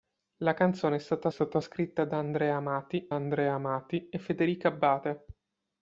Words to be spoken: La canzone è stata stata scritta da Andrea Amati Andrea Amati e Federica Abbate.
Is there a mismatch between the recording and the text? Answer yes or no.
no